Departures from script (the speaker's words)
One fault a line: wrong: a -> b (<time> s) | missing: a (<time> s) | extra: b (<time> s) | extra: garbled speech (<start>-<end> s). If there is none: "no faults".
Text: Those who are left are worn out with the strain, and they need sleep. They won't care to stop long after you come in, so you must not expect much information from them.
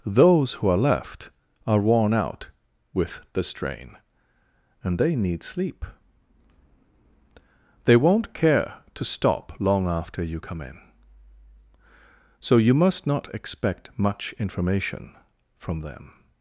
no faults